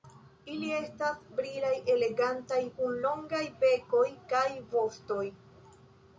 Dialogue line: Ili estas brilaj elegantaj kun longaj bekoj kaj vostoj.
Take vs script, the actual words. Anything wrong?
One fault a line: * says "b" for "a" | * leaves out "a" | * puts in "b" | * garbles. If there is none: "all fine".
all fine